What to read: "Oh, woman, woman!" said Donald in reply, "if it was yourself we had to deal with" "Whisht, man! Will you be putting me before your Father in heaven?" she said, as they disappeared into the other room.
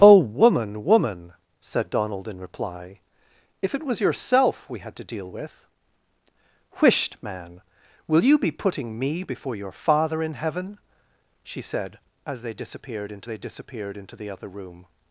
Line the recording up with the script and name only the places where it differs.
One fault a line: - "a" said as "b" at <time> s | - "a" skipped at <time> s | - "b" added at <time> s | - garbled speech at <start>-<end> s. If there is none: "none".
- "they disappeared into" added at 13.2 s